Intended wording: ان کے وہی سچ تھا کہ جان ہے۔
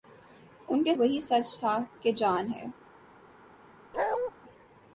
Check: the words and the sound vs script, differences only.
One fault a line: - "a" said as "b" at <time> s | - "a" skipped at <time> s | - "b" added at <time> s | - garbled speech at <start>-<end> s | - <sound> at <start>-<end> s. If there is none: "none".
- bark at 3.9-4.3 s